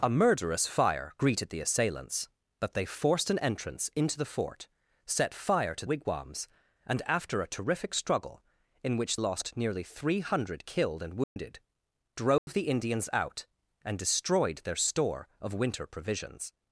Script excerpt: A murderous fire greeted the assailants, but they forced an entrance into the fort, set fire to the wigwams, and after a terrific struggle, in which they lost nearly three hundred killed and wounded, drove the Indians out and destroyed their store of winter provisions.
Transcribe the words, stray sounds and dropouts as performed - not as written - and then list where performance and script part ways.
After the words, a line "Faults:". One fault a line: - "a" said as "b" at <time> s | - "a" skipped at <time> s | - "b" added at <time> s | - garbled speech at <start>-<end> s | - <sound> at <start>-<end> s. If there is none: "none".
A murderous fire greeted the assailants, but they forced an entrance into the fort, set fire to wigwams, and after a terrific struggle, in which lost nearly three hundred killed and wounded, drove the Indians out and destroyed their store of winter provisions.
Faults:
- "the" skipped at 5.8 s
- "they" skipped at 9.2 s
- dropout at 11.2-11.4 s
- dropout at 12.4-12.5 s